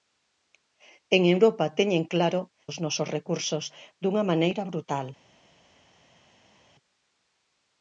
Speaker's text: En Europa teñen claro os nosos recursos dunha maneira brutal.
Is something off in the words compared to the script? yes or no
no